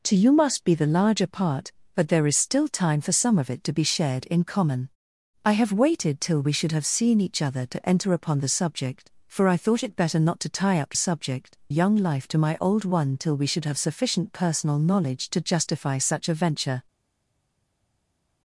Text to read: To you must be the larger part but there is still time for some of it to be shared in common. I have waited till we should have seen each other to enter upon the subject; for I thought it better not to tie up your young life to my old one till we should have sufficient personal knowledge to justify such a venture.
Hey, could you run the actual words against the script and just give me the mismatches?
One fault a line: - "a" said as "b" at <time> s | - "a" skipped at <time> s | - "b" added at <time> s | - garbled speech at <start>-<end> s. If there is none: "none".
- "your" said as "subject" at 10.9 s